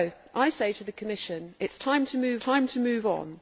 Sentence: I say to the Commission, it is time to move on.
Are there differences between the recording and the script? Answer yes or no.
yes